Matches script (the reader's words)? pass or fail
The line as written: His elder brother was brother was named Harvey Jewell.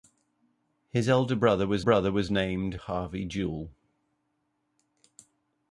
pass